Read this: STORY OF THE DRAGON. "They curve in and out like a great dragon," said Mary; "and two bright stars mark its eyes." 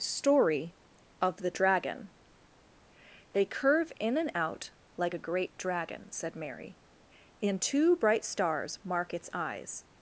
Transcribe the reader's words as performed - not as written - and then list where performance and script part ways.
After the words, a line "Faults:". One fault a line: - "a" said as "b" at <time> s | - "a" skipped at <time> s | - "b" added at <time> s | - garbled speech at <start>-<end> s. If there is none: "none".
STORY OF THE DRAGON. "They curve in and out like a great dragon," said Mary; "and two bright stars mark its eyes."
Faults:
none